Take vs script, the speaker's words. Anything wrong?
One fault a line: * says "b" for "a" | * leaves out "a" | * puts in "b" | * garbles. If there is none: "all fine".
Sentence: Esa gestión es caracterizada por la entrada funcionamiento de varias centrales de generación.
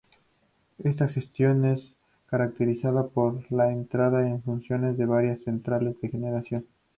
* says "Esta" for "Esa"
* puts in "en"